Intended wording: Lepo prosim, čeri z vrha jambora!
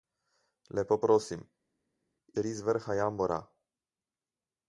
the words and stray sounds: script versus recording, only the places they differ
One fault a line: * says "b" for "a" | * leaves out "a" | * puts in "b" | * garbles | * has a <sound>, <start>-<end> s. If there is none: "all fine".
all fine